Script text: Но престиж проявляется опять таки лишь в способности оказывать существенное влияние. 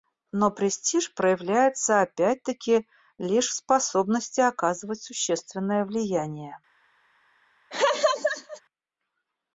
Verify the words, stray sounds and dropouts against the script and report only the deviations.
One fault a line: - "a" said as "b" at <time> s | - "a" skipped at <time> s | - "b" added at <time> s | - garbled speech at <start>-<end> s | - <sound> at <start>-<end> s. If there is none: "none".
- laugh at 7.7-8.6 s